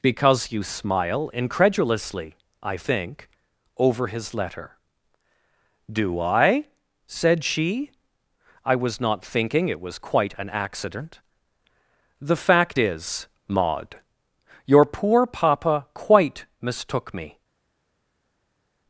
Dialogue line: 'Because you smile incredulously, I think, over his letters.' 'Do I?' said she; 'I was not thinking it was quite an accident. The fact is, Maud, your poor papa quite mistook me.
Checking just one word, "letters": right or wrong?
wrong